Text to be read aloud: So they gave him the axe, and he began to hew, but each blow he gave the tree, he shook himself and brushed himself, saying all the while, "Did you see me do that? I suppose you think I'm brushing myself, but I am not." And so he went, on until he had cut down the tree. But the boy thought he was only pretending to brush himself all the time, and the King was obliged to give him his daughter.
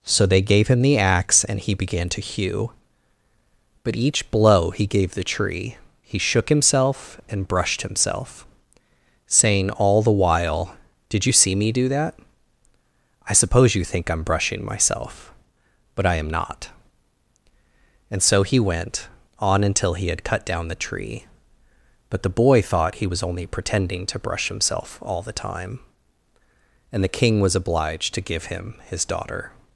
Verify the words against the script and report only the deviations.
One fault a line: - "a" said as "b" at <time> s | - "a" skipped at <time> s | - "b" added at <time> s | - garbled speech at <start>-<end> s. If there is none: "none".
none